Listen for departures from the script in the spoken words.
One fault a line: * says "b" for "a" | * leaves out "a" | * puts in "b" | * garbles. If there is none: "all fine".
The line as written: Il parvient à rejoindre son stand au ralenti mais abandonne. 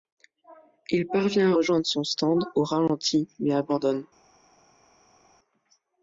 all fine